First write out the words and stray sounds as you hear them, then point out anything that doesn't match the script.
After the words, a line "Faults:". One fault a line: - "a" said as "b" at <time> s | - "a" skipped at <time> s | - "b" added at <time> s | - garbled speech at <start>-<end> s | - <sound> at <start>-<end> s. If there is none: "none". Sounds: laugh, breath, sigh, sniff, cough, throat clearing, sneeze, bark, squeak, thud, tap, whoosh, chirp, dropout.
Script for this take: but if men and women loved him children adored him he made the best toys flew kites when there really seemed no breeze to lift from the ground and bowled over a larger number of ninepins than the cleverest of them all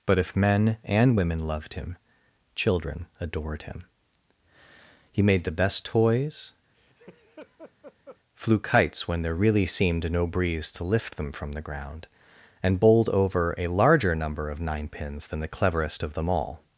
but if men and women loved him children adored him he made the best toys flew kites when there really seemed no breeze to lift them from the ground and bowled over a larger number of ninepins than the cleverest of them all
Faults:
- laugh at 6.7-8.2 s
- "them" added at 11.2 s